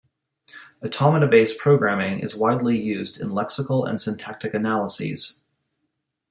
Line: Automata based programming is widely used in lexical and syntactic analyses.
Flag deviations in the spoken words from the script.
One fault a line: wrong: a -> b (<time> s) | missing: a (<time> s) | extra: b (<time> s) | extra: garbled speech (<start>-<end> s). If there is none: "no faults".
no faults